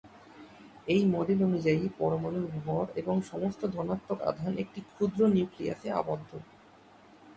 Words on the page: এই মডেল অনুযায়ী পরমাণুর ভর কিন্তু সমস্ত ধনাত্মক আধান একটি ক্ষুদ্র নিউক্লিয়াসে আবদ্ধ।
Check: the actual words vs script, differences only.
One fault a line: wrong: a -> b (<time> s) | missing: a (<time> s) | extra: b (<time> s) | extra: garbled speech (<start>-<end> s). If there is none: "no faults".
wrong: কিন্তু -> এবং (2.9 s)